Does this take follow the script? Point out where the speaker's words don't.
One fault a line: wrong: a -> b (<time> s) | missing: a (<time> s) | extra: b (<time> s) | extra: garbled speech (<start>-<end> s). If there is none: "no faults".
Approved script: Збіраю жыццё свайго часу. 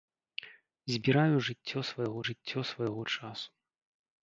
extra: жыццё свайго (2.3 s)